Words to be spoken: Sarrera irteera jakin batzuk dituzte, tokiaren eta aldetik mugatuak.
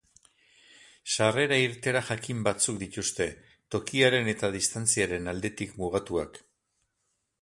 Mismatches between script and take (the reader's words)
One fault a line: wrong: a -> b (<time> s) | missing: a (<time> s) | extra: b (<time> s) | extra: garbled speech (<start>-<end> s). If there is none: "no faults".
extra: distantziaren (4.6 s)